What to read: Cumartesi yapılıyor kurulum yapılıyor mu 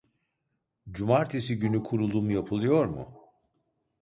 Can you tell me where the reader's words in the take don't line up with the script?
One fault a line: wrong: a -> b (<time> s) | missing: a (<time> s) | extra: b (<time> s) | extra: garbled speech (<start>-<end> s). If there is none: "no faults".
wrong: yapılıyor -> günü (1.6 s)